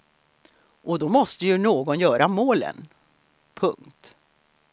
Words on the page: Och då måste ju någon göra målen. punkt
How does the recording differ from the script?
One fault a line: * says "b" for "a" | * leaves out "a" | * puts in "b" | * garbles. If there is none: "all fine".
all fine